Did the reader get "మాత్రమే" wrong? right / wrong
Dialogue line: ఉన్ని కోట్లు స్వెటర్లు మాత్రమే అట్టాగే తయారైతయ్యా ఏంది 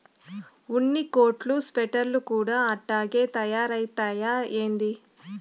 wrong